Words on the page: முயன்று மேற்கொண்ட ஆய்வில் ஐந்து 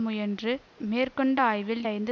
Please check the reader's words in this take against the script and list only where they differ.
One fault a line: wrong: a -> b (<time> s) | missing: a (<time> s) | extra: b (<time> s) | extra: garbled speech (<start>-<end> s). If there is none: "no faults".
no faults